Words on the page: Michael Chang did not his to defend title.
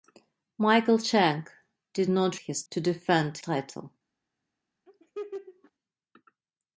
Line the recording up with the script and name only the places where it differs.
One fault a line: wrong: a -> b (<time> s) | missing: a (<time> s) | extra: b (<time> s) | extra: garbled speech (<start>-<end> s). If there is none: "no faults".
no faults